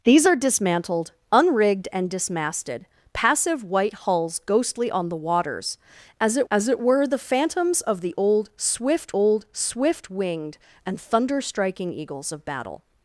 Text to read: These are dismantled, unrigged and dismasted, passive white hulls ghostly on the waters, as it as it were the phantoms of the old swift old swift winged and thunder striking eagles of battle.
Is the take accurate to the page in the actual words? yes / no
yes